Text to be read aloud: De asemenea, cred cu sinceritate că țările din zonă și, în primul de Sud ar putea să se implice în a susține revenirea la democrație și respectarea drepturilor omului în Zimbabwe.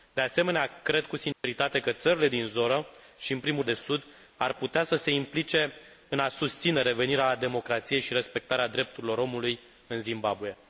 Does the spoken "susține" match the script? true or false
true